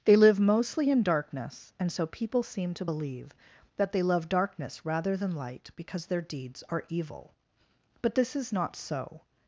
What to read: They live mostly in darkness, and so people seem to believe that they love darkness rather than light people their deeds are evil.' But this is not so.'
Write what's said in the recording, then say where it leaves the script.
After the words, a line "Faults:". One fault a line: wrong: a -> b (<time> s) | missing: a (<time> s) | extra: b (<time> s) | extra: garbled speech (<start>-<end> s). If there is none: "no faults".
They live mostly in darkness, and so people seem to believe that they love darkness rather than light because their deeds are evil.' But this is not so.'
Faults:
wrong: people -> because (5.7 s)